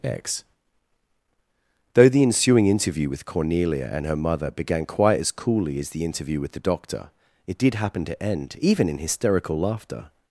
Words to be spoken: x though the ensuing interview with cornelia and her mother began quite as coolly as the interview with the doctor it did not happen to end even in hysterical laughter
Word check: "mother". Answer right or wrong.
right